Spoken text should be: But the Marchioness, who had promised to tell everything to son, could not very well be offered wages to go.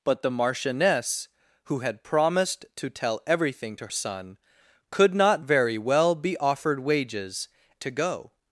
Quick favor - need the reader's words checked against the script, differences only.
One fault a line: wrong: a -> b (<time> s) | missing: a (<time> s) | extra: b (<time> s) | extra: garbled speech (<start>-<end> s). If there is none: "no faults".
no faults